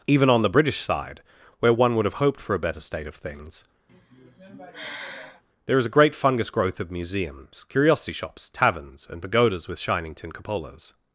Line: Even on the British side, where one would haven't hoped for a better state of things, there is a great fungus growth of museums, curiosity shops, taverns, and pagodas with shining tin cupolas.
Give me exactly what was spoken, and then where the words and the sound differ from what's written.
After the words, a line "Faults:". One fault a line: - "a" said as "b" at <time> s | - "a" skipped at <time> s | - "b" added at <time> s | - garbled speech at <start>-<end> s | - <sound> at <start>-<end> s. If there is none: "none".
Even on the British side, where one would have hoped for a better state of things, there is a great fungus growth of museums, curiosity shops, taverns, and pagodas with shining tin cupolas.
Faults:
- "haven't" said as "have" at 2.0 s
- sigh at 3.9-5.4 s